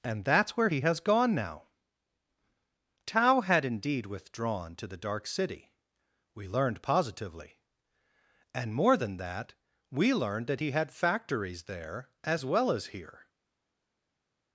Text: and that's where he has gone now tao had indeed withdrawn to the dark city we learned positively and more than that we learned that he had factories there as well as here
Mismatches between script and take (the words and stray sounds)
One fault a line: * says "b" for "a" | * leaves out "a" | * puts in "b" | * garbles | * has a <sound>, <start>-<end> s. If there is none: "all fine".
all fine